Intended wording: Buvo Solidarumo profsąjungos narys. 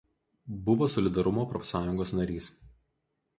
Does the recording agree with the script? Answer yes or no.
yes